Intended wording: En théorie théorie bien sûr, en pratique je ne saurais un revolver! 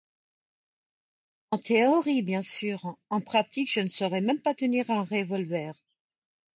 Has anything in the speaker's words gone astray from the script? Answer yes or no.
yes